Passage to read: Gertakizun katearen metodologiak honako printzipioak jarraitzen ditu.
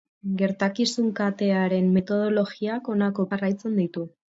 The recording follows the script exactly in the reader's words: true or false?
false